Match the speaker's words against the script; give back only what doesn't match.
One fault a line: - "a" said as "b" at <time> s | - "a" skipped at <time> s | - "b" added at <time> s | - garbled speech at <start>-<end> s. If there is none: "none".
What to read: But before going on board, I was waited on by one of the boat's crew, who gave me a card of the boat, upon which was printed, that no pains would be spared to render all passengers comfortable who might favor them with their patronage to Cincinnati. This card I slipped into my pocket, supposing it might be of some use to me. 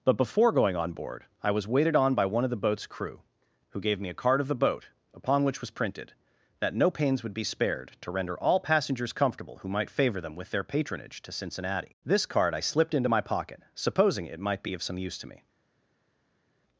none